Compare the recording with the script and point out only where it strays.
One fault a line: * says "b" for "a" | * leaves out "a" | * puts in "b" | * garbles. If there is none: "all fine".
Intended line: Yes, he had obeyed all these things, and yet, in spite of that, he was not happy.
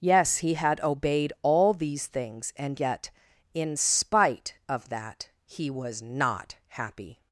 all fine